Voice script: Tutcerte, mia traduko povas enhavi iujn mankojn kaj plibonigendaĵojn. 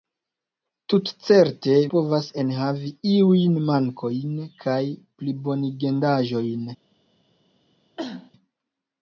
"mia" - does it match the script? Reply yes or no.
no